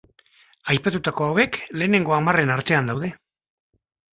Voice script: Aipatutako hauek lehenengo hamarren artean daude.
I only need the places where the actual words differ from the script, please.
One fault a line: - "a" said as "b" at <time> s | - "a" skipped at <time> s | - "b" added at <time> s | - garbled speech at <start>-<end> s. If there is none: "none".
none